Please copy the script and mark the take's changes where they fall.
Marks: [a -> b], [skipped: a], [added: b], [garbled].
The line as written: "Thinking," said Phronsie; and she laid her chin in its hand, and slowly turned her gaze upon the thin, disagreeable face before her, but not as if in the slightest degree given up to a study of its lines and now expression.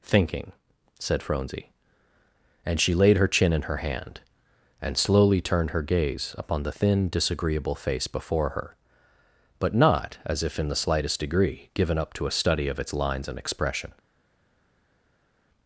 "Thinking," said Phronsie; and she laid her chin in [its -> her] hand, and slowly turned her gaze upon the thin, disagreeable face before her, but not as if in the slightest degree given up to a study of its lines and [skipped: now] expression.